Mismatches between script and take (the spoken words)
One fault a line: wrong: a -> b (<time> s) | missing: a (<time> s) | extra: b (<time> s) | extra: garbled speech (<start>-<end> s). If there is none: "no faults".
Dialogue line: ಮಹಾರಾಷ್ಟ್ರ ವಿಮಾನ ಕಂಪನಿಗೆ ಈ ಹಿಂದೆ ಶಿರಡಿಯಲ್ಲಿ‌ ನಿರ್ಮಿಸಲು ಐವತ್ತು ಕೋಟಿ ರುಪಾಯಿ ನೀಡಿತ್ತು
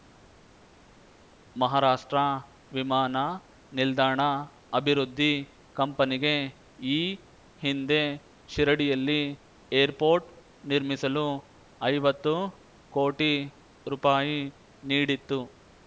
extra: ನಿಲ್ದಾಣ ಅಭಿವೃದ್ಧಿ (3.7 s)
extra: ಏರ್‌ಪೋರ್ಟ್ (9.7 s)